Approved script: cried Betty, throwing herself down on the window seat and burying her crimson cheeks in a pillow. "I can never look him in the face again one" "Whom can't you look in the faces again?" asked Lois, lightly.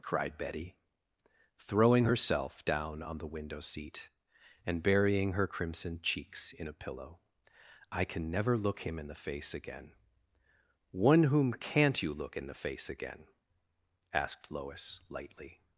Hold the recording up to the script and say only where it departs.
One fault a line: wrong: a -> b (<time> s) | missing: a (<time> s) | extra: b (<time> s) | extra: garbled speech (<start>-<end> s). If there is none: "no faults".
wrong: faces -> face (12.5 s)